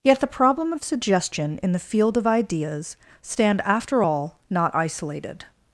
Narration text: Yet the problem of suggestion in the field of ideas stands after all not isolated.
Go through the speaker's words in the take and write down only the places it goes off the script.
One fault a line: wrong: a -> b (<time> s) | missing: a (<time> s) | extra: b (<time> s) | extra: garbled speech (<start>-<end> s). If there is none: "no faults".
wrong: stands -> stand (3.2 s)